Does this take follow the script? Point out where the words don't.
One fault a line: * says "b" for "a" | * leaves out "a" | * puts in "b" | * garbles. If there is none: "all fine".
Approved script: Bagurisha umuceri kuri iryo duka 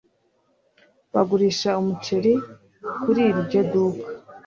all fine